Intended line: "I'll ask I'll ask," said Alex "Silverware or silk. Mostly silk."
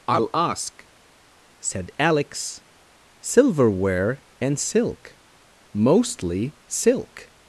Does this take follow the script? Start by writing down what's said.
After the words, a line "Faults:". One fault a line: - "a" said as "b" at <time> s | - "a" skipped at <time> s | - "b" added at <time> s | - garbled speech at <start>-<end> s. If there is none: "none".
"I'll ask," said Alex "Silverware and silk. Mostly silk."
Faults:
- "I'll ask" skipped at 0.9 s
- "or" said as "and" at 4.4 s